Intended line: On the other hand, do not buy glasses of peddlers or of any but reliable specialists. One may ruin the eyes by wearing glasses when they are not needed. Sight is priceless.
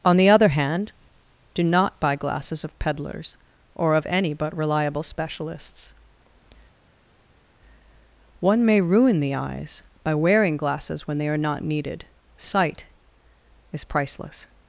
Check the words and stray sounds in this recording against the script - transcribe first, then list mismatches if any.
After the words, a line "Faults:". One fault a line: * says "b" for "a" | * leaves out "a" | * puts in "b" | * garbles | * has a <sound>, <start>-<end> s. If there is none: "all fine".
On the other hand, do not buy glasses of peddlers or of any but reliable specialists. One may ruin the eyes by wearing glasses when they are not needed. Sight is priceless.
Faults:
all fine